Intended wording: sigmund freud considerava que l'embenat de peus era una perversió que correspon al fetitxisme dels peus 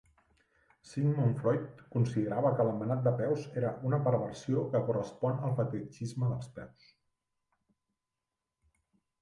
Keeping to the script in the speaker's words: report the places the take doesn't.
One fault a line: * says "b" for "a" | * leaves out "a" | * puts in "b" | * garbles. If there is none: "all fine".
all fine